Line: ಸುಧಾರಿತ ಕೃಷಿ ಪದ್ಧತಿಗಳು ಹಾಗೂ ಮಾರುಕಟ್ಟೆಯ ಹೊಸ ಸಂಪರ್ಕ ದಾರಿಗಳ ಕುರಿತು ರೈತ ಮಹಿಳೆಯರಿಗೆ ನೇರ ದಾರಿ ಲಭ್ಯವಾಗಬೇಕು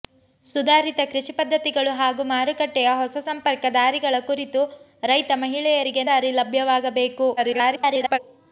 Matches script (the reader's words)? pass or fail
fail